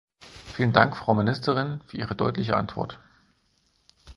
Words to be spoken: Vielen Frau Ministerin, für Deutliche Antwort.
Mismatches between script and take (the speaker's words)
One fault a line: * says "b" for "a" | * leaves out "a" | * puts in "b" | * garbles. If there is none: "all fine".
* puts in "Dank"
* puts in "Ihre"